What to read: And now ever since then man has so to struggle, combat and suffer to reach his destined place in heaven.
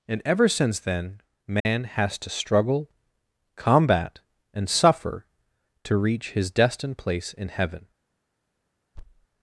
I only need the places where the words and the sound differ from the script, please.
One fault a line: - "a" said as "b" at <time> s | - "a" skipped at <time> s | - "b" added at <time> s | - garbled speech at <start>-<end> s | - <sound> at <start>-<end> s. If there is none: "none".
- "now" skipped at 0.2 s
- dropout at 1.6-1.7 s
- "so" skipped at 2.2 s
- thud at 8.9-9.3 s